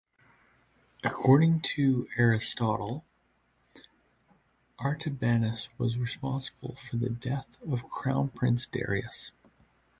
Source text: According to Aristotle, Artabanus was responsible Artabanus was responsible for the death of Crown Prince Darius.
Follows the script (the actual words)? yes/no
no